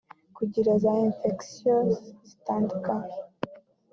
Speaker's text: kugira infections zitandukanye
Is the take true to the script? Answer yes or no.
no